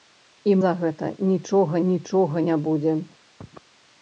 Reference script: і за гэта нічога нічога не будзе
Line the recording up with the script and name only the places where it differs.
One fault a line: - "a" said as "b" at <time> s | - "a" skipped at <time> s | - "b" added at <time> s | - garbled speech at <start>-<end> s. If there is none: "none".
none